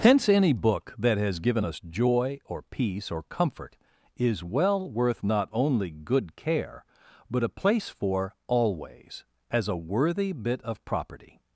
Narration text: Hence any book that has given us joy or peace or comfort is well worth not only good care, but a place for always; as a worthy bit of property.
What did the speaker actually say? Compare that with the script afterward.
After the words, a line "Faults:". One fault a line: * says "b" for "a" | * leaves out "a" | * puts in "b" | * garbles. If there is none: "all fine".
Hence any book that has given us joy or peace or comfort is well worth not only good care, but a place for always; as a worthy bit of property.
Faults:
all fine